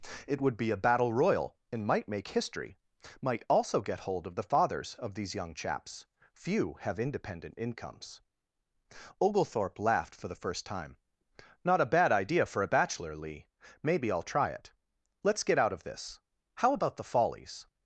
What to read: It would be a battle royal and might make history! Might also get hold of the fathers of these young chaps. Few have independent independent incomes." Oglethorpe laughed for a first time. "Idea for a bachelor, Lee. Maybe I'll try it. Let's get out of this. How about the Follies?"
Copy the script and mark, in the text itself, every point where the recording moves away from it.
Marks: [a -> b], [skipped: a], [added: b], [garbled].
It would be a battle royal and might make history! Might also get hold of the fathers of these young chaps. Few have independent [skipped: independent] incomes." Oglethorpe laughed for [a -> the] first time. [added: Not a bad] "Idea for a bachelor, Lee. Maybe I'll try it. Let's get out of this. How about the Follies?"